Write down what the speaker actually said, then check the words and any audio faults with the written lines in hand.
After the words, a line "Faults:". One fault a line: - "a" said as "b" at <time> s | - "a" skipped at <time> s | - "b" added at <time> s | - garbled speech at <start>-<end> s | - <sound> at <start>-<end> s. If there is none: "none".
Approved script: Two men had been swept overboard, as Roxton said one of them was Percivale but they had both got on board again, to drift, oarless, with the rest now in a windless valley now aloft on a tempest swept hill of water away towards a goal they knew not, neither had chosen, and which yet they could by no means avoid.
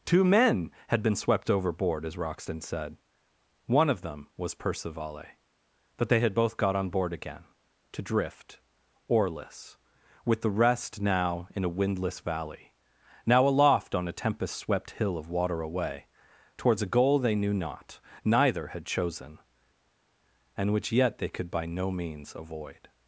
Two men had been swept overboard, as Roxton said one of them was Percivale but they had both got on board again, to drift, oarless, with the rest now in a windless valley now aloft on a tempest swept hill of water away towards a goal they knew not, neither had chosen, and which yet they could by no means avoid.
Faults:
none